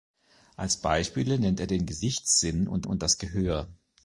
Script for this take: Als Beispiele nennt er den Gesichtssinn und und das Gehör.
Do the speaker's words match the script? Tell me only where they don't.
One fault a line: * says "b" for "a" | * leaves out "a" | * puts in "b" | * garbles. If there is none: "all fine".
all fine